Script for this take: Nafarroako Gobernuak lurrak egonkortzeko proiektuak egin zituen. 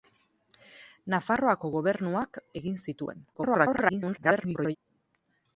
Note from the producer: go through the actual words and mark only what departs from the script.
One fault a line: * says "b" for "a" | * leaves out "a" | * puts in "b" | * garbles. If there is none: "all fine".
* leaves out "lurrak egonkortzeko proiektuak"
* garbles